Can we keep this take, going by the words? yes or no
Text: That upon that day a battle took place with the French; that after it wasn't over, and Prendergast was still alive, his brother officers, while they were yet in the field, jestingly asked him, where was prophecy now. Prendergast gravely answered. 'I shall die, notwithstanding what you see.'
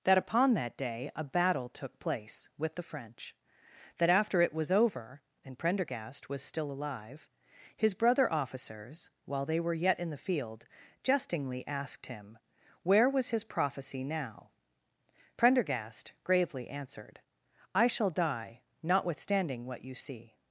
no